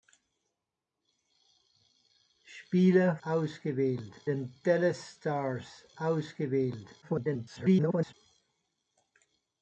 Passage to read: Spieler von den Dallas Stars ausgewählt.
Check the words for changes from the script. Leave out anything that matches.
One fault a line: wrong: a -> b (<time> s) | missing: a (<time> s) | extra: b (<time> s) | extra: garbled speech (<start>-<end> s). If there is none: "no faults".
wrong: von -> ausgewählt (3.2 s)
extra: garbled speech (7.0-8.1 s)